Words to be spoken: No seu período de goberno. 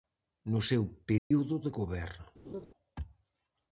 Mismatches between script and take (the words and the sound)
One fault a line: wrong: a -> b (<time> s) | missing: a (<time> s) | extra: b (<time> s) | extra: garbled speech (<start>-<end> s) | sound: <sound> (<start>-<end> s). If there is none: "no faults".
sound: dropout (1.2-1.3 s)
sound: laugh (2.4-2.7 s)